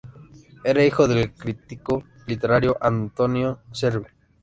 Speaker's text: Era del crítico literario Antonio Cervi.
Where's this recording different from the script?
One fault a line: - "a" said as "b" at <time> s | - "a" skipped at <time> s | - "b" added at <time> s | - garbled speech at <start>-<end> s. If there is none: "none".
- "hijo" added at 0.8 s